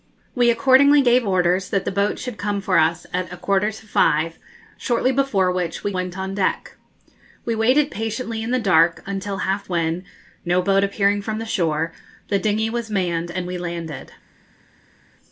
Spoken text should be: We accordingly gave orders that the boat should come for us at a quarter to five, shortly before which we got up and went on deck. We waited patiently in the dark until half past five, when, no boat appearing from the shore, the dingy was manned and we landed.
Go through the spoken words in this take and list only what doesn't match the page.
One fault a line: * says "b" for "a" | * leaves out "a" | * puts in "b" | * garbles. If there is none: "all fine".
* leaves out "got up and"
* leaves out "past five"